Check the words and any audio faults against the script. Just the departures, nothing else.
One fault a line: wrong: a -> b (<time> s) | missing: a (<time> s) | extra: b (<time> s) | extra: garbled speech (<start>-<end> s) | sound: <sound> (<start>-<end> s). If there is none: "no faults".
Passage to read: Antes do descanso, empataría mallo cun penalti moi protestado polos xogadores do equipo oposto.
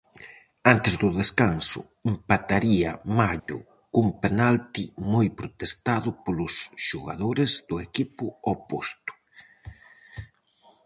sound: dropout (3.4-3.5 s)